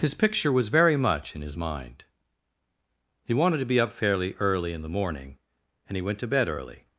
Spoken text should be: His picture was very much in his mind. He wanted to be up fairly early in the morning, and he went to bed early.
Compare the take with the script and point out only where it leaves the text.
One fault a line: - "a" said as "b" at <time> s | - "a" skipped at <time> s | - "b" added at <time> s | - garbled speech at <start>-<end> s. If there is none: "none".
none